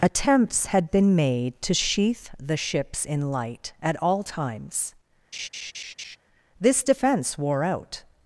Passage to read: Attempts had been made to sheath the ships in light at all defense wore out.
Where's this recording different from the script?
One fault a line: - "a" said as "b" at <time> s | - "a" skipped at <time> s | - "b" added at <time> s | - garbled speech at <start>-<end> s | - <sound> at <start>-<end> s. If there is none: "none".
- "times This" added at 4.2 s
- laugh at 5.3-6.2 s